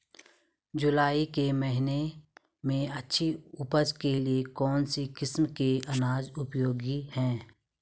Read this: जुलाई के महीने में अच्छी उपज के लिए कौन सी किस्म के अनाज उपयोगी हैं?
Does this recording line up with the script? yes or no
yes